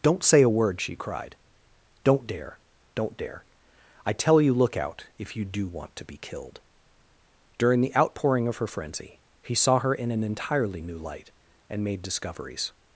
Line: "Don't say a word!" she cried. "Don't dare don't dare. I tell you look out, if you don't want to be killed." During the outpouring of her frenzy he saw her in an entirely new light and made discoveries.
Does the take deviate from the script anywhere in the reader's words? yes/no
yes